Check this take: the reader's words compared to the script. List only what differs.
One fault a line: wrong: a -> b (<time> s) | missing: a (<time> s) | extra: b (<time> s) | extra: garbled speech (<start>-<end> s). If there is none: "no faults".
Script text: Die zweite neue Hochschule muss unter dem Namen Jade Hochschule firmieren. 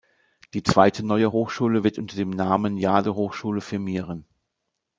wrong: muss -> wird (1.8 s)